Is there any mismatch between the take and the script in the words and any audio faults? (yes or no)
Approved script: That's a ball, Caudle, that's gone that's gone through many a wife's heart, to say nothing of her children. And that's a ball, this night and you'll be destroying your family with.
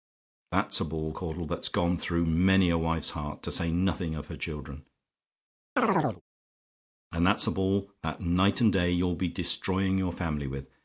yes